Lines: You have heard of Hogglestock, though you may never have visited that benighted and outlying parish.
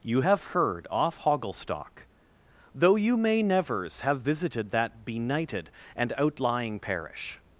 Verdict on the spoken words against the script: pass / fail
fail